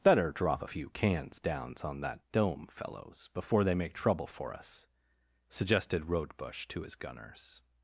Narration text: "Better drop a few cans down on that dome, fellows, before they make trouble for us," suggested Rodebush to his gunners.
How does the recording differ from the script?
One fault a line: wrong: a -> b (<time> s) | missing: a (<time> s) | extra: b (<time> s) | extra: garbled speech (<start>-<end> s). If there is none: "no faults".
wrong: down -> downs (1.4 s)